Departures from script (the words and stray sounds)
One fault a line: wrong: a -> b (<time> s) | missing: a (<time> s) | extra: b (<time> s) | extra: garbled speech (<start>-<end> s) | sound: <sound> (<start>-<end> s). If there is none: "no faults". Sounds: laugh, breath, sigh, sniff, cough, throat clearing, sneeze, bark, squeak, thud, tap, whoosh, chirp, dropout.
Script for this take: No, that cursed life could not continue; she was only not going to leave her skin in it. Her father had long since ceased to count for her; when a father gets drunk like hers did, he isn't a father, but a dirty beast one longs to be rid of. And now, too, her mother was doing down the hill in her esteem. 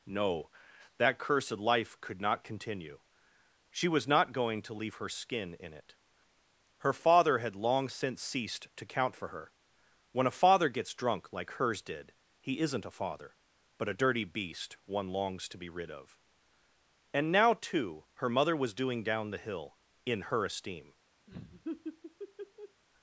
missing: only (4.1 s)
sound: laugh (21.3-22.8 s)